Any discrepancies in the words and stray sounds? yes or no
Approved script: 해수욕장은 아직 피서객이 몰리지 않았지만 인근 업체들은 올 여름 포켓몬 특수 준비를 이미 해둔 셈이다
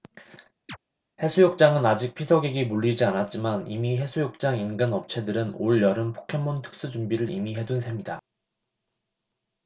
yes